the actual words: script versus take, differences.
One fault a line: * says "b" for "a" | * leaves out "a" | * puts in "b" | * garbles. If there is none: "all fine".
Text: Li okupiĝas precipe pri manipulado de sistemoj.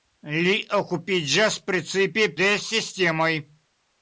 * leaves out "pri manipulado"